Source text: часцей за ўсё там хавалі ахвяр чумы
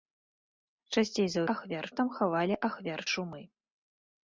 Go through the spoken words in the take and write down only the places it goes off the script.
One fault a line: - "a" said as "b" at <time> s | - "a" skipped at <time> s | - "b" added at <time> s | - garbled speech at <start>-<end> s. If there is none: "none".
- "ўсё" said as "ахвяр" at 1.5 s